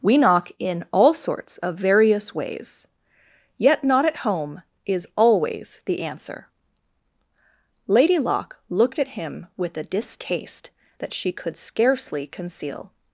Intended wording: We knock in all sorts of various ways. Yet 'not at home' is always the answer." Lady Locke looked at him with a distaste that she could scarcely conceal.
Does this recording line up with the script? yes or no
yes